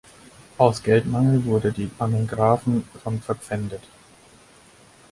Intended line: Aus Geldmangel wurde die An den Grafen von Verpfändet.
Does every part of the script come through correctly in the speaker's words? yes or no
yes